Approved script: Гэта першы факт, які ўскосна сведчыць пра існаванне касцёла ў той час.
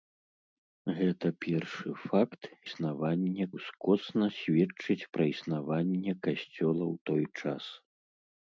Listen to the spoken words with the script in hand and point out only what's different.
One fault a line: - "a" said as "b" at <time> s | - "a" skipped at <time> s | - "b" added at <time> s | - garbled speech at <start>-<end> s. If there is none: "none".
- "які" said as "існаванне" at 2.7 s